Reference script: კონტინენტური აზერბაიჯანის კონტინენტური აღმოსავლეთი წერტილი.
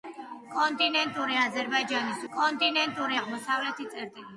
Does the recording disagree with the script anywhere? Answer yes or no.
no